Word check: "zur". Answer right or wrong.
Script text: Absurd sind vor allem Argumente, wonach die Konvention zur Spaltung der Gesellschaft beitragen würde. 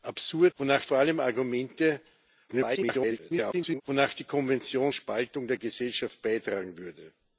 wrong